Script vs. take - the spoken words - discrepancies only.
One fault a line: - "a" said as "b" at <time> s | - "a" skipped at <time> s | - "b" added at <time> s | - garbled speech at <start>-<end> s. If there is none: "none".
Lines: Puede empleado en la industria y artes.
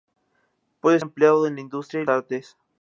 none